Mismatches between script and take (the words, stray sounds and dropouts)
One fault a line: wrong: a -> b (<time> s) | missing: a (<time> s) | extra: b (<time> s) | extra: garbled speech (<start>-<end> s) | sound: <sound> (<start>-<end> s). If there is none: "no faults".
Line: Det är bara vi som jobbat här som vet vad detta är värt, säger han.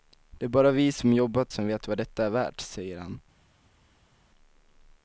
missing: här (1.5 s)